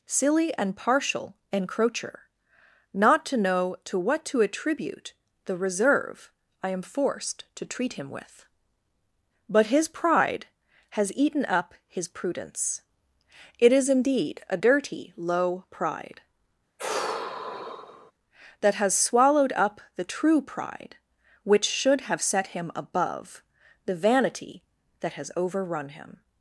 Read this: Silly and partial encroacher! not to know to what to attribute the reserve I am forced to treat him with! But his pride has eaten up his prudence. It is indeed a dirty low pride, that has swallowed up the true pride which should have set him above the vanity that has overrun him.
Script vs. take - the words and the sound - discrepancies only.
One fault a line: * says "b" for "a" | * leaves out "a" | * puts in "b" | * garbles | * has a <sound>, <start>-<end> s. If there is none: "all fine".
* has a sigh, 16.8-18.1 s